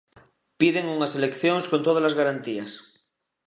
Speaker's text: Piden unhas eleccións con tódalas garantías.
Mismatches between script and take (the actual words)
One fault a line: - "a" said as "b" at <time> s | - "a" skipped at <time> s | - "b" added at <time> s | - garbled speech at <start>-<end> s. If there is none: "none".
none